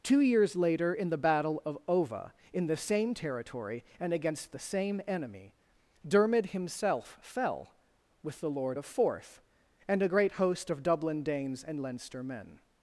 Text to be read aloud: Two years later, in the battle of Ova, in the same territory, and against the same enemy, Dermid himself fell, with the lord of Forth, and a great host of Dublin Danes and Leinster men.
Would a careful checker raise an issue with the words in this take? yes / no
no